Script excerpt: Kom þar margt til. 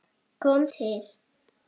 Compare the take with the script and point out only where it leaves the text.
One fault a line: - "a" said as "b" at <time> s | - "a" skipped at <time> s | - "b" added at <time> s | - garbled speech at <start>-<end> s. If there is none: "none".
- "þar margt" skipped at 0.7 s